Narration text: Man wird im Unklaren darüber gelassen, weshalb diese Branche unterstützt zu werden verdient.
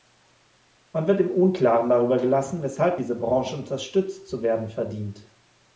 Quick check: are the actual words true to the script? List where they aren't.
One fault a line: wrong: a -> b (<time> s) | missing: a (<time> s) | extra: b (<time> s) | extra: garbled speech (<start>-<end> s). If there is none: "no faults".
no faults